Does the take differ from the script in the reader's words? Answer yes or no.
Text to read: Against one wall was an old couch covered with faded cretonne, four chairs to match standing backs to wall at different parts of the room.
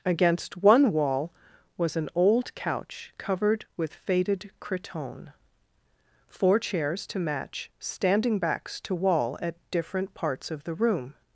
no